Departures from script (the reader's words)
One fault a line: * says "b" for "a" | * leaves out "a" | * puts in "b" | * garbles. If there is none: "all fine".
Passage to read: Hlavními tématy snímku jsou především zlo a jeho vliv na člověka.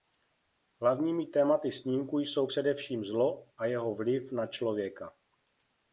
all fine